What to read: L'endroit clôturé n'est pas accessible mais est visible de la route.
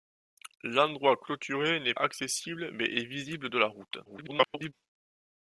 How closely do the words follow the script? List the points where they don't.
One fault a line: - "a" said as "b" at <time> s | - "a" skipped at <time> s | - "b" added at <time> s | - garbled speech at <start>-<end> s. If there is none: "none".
- "pas" skipped at 1.9 s
- garbled speech at 4.1-4.7 s